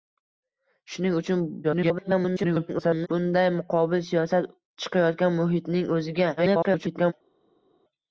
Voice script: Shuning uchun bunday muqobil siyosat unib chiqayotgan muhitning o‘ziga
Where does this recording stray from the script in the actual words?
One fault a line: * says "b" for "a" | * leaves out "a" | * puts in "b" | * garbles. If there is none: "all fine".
* garbles
* leaves out "unib"
* garbles